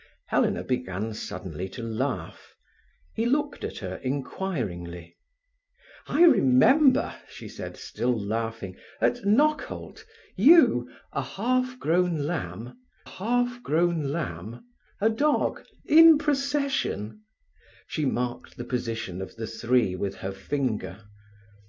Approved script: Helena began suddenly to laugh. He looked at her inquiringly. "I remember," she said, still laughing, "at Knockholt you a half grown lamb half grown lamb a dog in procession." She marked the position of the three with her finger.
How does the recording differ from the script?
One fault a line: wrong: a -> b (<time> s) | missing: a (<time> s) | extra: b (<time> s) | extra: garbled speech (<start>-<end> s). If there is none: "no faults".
no faults